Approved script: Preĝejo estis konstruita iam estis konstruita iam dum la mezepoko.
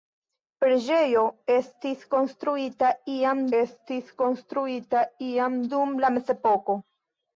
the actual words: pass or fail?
pass